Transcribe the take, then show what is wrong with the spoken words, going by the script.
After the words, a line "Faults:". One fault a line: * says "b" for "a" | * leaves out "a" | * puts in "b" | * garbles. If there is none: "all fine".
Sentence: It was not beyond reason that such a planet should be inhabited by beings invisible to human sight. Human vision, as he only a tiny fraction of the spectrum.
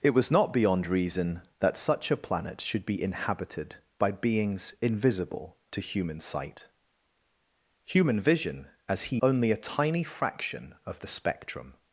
It was not beyond reason that such a planet should be inhabited by beings invisible to human sight. Human vision, as he only a tiny fraction of the spectrum.
Faults:
all fine